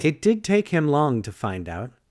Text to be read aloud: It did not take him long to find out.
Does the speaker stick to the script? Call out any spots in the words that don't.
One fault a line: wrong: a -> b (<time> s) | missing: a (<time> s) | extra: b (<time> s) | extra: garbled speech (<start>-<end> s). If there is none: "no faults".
missing: not (0.4 s)